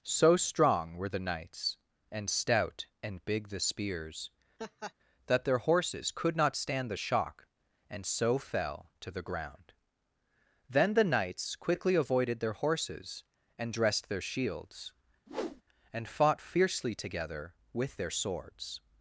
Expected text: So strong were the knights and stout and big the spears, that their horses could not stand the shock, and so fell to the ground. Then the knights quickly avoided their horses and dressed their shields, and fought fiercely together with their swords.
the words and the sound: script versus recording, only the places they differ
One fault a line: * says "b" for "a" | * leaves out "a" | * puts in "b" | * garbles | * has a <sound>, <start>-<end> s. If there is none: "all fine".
* has a laugh, 4.6-4.9 s
* has a whoosh, 15.3-15.6 s